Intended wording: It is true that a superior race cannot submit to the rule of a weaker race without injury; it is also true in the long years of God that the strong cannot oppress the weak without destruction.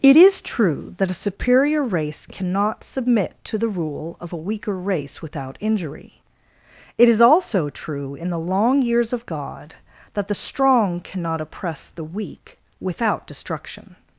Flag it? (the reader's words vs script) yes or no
no